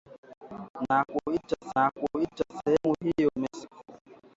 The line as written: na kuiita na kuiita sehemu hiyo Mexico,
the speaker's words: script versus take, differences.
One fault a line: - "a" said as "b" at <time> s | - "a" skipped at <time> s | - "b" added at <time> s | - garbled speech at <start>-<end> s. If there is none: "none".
none